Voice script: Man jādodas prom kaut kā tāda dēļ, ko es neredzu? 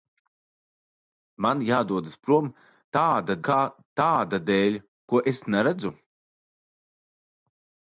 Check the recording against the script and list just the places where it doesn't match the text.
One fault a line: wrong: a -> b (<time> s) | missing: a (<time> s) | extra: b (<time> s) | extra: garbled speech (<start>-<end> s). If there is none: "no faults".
wrong: kaut -> tāda (3.0 s)